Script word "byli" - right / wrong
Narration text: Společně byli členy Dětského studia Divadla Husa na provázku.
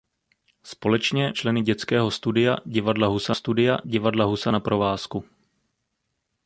wrong